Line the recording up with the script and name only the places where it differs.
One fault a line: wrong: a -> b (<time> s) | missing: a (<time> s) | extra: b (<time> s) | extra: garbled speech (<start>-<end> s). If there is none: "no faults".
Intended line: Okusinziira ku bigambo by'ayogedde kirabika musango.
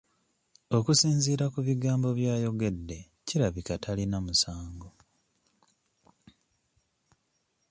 extra: talina (3.8 s)